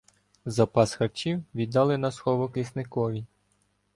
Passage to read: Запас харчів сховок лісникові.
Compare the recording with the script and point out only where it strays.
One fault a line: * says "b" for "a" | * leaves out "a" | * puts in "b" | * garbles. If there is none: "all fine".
* puts in "віддали на"